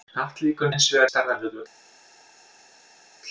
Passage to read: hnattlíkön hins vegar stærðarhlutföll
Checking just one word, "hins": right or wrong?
right